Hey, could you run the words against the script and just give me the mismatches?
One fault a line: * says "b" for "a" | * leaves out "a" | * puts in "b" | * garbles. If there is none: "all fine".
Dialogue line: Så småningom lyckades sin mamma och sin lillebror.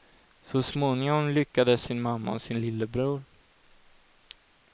all fine